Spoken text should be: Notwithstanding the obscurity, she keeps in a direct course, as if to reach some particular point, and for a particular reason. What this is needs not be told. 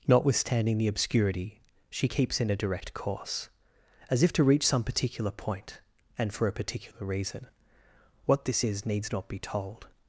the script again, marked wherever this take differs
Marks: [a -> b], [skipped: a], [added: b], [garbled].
Notwithstanding the obscurity, she keeps in a direct course, as if to reach some particular point, and for a particular reason. What this is needs not be told.